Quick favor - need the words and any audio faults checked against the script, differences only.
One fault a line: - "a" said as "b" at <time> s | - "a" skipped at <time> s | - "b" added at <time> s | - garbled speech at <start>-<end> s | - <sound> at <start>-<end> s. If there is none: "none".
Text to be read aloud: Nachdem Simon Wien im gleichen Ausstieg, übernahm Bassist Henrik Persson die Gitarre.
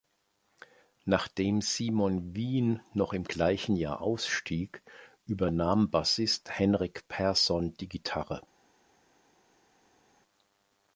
- "noch" added at 2.9 s
- "Jahr" added at 3.8 s